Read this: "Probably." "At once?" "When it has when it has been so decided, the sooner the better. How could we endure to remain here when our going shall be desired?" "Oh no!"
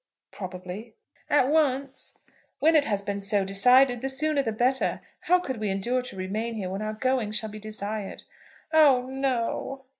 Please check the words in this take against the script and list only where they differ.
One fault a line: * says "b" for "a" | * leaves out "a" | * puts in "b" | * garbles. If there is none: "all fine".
* leaves out "when it has"